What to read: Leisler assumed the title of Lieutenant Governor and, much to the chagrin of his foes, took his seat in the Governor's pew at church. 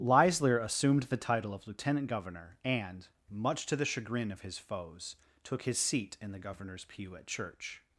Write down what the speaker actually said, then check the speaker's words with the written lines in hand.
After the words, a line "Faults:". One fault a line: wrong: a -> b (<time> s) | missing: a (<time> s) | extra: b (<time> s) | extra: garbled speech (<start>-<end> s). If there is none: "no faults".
Leisler assumed the title of Lieutenant Governor and, much to the chagrin of his foes, took his seat in the Governor's pew at church.
Faults:
no faults